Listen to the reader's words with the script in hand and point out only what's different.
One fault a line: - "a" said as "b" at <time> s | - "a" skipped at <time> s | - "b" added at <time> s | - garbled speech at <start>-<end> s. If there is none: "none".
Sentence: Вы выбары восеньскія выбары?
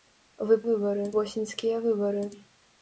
none